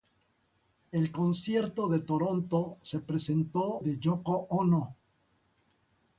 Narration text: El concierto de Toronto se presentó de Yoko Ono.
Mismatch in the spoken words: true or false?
false